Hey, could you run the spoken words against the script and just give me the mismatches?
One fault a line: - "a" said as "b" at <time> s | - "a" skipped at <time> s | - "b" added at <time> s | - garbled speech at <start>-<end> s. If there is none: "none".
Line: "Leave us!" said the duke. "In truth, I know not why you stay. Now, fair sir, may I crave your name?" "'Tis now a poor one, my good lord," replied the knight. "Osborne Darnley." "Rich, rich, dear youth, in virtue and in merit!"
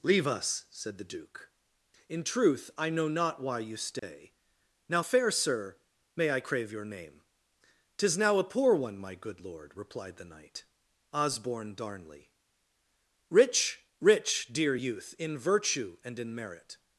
none